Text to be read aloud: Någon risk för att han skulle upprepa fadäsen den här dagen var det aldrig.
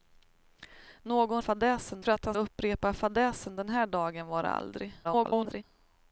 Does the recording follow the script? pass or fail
fail